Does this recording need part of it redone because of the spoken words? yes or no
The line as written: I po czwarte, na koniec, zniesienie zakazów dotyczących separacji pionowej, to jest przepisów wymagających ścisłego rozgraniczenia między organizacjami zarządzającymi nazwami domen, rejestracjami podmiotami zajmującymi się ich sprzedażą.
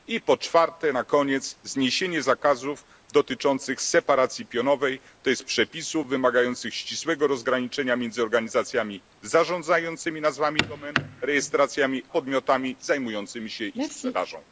no